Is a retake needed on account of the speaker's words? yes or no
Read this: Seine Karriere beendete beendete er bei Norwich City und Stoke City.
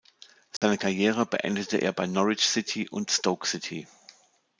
yes